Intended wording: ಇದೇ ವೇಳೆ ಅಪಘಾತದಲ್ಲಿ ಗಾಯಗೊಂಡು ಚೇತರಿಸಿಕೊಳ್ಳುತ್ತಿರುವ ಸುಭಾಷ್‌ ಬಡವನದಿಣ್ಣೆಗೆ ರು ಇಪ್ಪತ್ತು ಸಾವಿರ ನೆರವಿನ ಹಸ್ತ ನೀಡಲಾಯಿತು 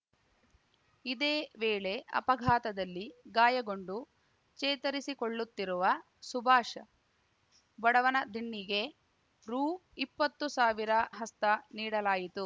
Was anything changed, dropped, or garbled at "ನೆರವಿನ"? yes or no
yes